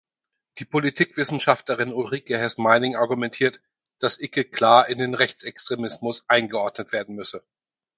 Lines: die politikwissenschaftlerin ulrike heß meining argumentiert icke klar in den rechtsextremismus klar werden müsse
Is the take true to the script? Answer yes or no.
no